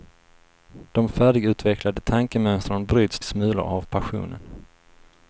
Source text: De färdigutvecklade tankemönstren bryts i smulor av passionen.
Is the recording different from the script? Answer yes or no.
no